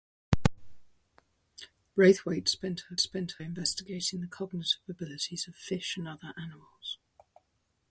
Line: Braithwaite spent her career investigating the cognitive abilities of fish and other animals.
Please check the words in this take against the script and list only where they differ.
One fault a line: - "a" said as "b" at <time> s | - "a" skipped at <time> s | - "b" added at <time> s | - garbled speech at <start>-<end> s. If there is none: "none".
- "career" said as "spent" at 3.0 s